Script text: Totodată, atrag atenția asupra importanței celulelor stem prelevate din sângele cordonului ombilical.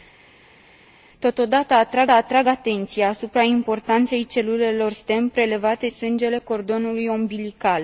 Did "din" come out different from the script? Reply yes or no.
yes